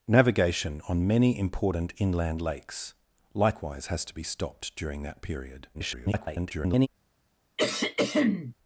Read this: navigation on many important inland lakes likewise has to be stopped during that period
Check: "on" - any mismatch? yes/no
no